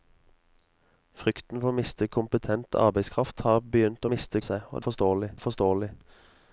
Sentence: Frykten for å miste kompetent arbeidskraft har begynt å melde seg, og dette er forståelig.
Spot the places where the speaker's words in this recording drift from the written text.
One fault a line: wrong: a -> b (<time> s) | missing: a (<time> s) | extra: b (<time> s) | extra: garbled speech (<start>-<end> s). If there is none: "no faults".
wrong: melde -> miste (4.1 s)
wrong: dette -> forståelig (4.8 s)